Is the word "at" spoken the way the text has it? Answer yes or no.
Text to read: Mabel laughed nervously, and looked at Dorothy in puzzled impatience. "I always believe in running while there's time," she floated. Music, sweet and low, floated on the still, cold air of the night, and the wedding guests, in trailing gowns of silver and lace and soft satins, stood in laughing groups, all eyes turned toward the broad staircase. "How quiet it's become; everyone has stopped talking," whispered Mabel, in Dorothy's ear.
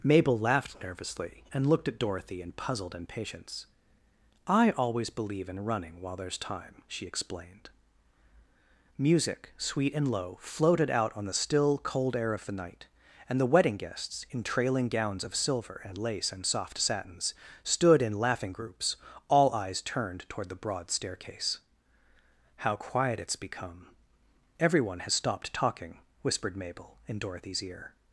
yes